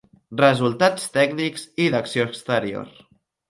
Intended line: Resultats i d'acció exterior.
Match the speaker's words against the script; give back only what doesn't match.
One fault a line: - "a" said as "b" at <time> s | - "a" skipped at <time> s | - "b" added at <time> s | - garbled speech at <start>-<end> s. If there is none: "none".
- "tècnics" added at 1.2 s